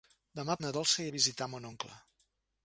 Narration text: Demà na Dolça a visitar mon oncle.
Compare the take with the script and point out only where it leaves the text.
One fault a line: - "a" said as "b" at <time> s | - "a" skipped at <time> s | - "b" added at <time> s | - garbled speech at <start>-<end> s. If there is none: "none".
none